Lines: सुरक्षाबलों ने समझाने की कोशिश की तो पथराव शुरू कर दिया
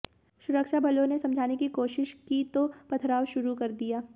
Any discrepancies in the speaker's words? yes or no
no